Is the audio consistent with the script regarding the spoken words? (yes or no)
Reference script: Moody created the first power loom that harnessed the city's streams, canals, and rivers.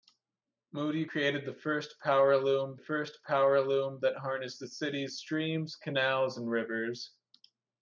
no